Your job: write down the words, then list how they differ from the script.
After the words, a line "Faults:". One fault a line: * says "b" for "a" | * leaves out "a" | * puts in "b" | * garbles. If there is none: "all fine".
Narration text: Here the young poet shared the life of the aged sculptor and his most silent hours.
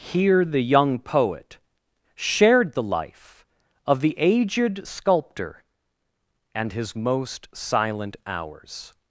Here the young poet shared the life of the aged sculptor and his most silent hours.
Faults:
all fine